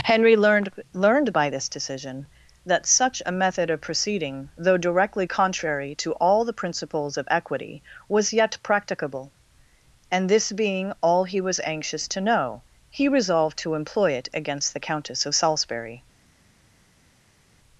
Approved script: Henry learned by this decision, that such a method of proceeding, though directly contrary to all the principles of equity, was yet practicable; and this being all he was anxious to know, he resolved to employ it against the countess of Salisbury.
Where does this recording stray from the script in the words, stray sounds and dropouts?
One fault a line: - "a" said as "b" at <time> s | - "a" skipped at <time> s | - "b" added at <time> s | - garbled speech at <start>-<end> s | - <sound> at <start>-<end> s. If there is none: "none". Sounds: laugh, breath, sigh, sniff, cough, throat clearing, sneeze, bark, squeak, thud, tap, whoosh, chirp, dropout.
- "learned" added at 0.9 s